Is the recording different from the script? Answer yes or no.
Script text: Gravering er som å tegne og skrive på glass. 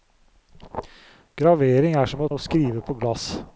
yes